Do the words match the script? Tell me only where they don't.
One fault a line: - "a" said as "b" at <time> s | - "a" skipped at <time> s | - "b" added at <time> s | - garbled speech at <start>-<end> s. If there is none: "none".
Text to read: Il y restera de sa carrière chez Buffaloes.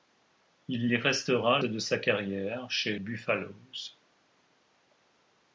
none